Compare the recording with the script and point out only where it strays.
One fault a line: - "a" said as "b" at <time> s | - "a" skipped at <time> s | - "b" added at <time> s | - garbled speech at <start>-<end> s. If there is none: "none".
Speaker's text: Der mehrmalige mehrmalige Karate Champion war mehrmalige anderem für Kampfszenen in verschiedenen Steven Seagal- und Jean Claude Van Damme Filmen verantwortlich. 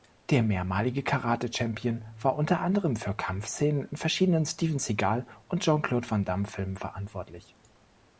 - "mehrmalige" skipped at 1.0 s
- "mehrmalige" said as "unter" at 2.4 s